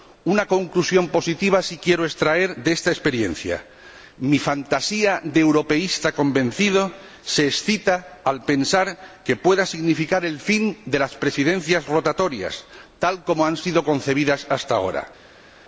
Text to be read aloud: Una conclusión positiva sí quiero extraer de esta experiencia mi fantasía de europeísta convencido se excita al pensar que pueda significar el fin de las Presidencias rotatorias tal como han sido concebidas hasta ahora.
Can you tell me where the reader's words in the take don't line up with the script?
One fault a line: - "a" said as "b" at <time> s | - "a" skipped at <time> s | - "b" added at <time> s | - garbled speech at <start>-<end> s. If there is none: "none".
none